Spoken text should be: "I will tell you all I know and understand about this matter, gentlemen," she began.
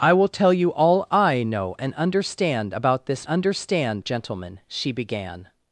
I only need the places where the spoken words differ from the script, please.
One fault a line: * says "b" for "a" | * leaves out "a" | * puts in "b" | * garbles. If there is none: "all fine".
* says "understand" for "matter"